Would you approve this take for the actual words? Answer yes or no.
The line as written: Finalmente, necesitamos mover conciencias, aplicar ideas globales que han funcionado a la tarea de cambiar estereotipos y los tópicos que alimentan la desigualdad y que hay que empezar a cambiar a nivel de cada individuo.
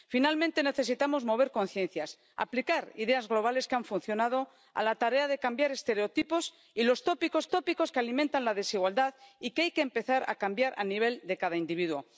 no